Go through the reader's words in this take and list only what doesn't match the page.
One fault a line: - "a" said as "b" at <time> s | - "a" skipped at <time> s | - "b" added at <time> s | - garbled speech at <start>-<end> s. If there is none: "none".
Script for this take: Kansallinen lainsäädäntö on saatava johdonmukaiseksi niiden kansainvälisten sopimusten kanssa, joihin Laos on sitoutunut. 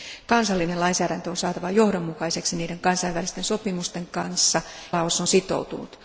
- "joihin" skipped at 4.6 s